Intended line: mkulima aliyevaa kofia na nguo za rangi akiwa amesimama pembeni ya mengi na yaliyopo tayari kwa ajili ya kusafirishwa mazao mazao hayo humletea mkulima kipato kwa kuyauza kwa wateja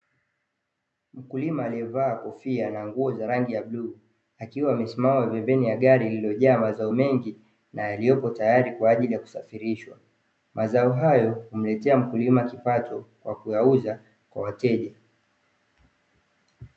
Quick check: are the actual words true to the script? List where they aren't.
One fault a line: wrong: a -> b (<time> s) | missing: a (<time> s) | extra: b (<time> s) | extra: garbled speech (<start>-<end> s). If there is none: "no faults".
extra: ya bluu (3.5 s)
extra: gari lililojaa mazao (5.8 s)
missing: mazao (10.9 s)